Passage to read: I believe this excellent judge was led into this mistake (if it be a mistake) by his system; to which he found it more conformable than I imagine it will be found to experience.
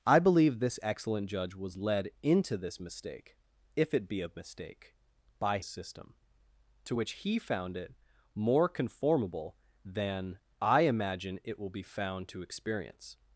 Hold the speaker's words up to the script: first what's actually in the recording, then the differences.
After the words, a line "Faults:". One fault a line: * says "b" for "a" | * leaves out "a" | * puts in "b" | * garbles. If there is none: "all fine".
I believe this excellent judge was led into this mistake (if it be a mistake) by system; to which he found it more conformable than I imagine it will be found to experience.
Faults:
* leaves out "his"